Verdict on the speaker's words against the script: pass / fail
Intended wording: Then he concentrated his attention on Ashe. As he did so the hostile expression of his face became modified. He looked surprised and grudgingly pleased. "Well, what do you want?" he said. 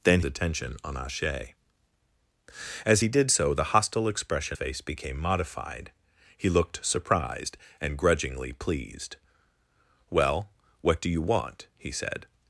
fail